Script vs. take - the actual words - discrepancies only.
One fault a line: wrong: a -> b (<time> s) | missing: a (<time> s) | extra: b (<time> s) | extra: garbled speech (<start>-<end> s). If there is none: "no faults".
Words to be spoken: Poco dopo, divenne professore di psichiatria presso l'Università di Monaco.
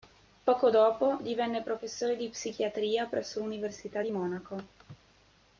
no faults